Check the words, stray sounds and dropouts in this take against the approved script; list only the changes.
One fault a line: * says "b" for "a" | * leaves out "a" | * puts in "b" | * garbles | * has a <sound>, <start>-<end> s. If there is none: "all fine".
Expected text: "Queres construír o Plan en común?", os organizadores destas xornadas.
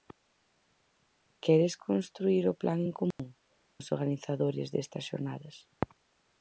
* has a dropout, 3.1-3.2 s